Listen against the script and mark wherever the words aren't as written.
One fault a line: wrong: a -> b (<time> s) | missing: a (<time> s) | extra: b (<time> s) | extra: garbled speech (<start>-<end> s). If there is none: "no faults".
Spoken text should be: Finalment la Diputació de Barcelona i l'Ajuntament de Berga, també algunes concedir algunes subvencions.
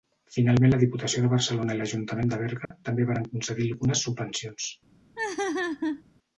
wrong: algunes -> varen (3.1 s)